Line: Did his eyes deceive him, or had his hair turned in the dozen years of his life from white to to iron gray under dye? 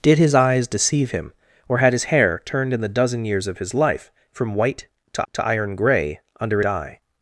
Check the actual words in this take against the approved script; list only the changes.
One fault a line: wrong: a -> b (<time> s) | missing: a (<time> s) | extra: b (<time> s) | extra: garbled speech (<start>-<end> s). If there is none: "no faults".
no faults